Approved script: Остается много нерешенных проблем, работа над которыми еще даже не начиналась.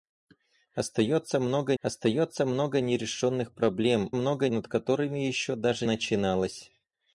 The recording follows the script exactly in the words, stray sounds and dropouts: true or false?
false